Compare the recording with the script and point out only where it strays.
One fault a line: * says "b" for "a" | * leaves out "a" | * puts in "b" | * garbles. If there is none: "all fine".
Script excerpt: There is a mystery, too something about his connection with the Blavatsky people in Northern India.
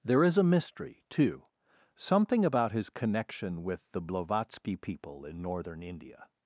all fine